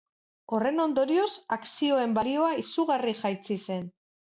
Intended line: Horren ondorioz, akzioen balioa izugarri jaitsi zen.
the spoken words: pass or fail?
pass